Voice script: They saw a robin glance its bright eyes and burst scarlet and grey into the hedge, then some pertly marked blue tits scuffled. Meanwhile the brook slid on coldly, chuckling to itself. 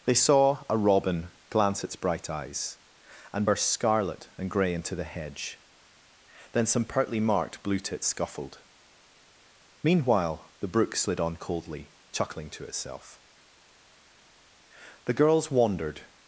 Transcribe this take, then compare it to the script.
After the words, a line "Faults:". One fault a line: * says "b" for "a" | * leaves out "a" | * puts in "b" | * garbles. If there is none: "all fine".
They saw a robin glance its bright eyes and burst scarlet and grey into the hedge, then some pertly marked blue tits scuffled. Meanwhile the brook slid on coldly, chuckling to itself. The girls wandered
Faults:
* puts in "The girls wandered"